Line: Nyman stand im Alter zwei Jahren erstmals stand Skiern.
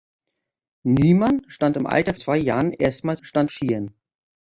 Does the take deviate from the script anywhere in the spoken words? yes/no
no